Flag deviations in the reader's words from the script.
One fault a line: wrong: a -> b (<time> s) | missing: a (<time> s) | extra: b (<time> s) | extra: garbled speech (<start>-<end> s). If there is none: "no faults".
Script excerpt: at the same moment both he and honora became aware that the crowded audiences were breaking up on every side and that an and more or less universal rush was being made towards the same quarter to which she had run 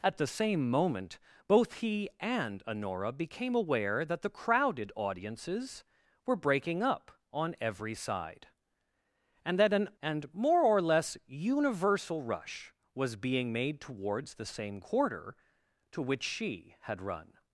no faults